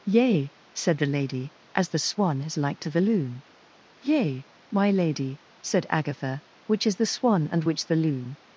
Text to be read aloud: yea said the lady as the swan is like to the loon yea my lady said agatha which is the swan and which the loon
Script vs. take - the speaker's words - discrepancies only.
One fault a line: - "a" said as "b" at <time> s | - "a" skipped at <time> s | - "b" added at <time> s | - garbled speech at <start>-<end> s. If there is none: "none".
none